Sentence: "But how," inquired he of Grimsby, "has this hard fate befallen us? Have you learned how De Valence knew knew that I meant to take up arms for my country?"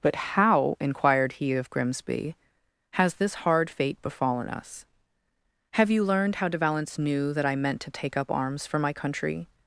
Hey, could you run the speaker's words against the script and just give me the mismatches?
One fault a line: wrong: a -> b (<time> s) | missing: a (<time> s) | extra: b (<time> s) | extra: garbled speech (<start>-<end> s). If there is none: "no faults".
missing: knew (7.3 s)